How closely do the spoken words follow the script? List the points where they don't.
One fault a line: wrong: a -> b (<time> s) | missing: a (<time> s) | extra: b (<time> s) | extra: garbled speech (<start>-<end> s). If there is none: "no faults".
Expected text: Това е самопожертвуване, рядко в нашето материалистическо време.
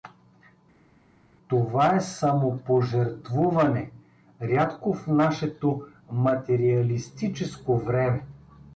no faults